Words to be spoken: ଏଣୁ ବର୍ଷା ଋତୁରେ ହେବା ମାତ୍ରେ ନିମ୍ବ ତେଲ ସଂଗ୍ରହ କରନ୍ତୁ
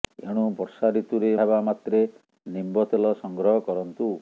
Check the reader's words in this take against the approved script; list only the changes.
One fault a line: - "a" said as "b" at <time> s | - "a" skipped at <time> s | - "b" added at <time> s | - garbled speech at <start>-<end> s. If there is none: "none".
none